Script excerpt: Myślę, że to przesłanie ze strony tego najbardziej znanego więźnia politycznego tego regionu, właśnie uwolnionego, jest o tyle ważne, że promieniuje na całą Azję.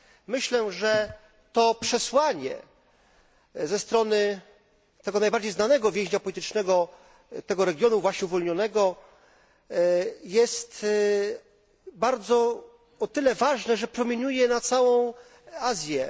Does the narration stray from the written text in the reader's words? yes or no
no